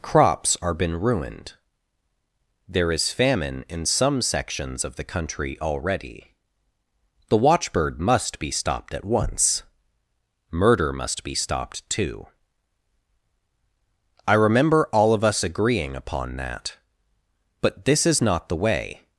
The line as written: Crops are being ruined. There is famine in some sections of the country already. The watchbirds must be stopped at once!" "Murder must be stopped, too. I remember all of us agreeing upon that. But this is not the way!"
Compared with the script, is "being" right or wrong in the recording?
wrong